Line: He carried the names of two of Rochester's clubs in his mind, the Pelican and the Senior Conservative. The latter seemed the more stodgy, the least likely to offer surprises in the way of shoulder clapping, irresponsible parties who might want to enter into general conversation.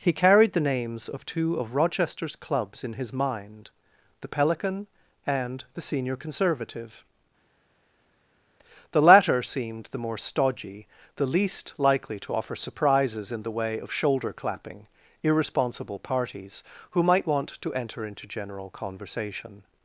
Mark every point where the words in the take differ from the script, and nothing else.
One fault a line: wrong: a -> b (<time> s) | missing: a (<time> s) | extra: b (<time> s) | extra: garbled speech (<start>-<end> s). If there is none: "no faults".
no faults